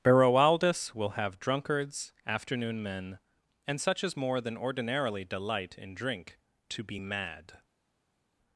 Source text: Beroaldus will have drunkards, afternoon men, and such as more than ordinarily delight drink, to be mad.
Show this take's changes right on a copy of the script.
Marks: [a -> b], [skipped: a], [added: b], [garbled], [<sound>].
Beroaldus will have drunkards, afternoon men, and such as more than ordinarily delight [added: in] drink, to be mad.